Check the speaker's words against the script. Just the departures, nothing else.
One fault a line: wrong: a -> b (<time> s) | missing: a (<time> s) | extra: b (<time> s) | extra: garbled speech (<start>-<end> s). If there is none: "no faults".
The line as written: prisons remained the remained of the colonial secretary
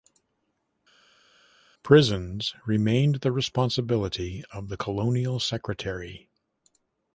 wrong: remained -> responsibility (3.3 s)